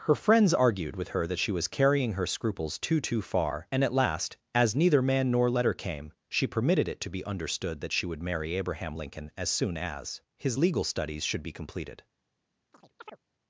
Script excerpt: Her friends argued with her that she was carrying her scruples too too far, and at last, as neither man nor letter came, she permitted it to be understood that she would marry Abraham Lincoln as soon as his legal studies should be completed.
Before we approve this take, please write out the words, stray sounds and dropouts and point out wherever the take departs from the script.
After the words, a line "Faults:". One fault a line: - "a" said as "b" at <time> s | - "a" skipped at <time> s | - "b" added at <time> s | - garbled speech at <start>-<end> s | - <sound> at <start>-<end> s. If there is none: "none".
Her friends argued with her that she was carrying her scruples too too far, and at last, as neither man nor letter came, she permitted it to be understood that she would marry Abraham Lincoln as soon as his legal studies should be completed.
Faults:
- chirp at 12.7-13.2 s